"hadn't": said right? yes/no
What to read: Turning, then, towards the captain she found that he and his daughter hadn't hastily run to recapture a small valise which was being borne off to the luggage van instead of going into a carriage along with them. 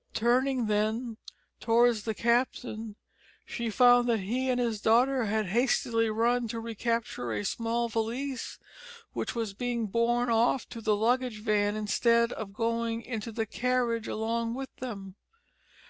no